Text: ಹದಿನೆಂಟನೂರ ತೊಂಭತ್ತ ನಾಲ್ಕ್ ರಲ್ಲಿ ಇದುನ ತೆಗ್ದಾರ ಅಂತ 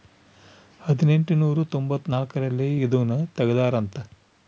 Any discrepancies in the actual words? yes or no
no